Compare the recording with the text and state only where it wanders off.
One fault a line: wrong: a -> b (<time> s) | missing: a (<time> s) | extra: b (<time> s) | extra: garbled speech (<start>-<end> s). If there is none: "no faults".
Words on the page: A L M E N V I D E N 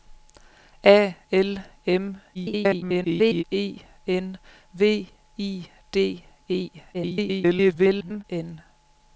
extra: garbled speech (2.3-3.4 s)
extra: garbled speech (6.9-8.2 s)